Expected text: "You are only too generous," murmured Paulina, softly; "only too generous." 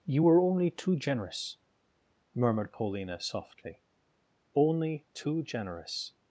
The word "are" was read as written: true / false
false